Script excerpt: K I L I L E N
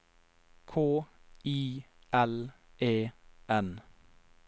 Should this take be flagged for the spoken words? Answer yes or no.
yes